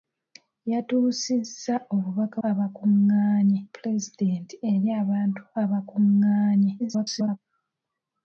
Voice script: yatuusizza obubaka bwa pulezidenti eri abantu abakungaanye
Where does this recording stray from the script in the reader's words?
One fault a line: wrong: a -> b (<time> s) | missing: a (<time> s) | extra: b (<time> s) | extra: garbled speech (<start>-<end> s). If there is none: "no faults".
wrong: bwa -> abakungaanye (2.5 s)
extra: garbled speech (6.8-7.4 s)